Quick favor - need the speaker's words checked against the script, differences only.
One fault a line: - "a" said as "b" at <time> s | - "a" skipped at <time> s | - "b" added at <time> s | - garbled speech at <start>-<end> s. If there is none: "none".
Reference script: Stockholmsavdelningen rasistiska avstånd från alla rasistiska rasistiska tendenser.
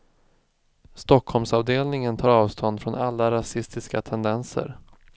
- "rasistiska" said as "tar" at 2.2 s
- "rasistiska" skipped at 4.0 s